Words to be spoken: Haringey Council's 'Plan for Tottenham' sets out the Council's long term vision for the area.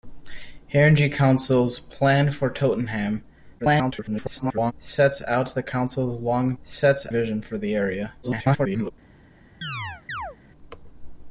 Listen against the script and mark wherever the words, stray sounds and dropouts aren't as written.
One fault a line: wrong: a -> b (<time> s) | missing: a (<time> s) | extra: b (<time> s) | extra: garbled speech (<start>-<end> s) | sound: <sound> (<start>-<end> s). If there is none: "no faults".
extra: garbled speech (3.6-4.7 s)
wrong: term -> sets (6.6 s)
extra: garbled speech (8.2-8.9 s)
sound: chirp (9.6-10.4 s)